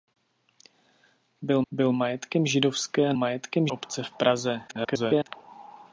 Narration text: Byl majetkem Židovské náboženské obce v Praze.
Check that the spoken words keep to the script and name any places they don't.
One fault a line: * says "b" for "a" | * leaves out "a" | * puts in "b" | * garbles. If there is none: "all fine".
* puts in "byl"
* says "majetkem" for "náboženské"
* garbles